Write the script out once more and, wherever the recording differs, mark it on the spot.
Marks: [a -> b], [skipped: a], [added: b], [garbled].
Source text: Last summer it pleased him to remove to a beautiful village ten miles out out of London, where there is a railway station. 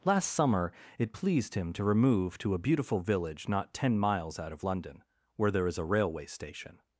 Last summer it pleased him to remove to a beautiful village [added: not] ten miles out [skipped: out] of London, where there is a railway station.